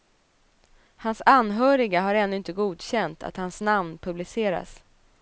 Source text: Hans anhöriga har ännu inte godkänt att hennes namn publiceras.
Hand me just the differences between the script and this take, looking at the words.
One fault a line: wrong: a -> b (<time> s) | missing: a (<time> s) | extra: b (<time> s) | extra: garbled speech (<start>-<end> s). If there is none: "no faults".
wrong: hennes -> hans (3.4 s)